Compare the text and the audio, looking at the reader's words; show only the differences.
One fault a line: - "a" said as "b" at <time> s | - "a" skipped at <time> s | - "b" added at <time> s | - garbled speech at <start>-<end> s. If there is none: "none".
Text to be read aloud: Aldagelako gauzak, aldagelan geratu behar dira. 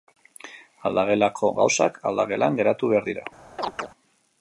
none